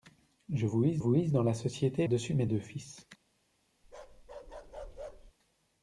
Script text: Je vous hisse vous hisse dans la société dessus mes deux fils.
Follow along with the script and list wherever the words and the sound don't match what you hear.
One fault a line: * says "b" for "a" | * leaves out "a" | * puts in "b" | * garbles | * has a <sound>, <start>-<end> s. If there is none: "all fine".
* has a bark, 3.8-5.3 s